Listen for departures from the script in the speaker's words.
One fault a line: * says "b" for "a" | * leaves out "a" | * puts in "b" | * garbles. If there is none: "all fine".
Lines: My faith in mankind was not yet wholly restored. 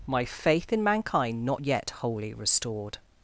* leaves out "was"